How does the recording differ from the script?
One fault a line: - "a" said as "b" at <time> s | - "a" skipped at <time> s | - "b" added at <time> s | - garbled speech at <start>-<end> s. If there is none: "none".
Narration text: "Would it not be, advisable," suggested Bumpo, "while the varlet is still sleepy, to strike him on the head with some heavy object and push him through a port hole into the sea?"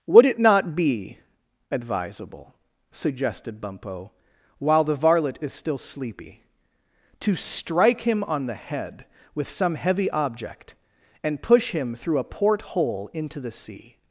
none